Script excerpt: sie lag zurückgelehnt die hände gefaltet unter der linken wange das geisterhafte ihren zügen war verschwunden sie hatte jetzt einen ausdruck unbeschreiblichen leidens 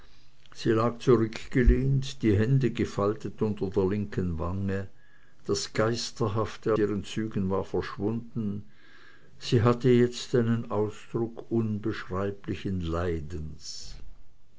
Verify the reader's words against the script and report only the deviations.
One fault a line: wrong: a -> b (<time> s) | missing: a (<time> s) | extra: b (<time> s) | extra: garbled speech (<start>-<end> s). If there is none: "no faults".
no faults